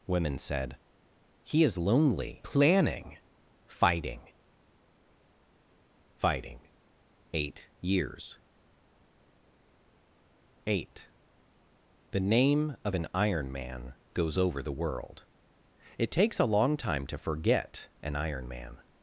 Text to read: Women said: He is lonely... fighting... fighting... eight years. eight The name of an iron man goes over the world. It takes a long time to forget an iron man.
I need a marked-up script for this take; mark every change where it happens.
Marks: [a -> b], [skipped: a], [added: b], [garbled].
Women said: He is lonely... [added: planning] fighting... fighting... eight years. eight The name of an iron man goes over the world. It takes a long time to forget an iron man.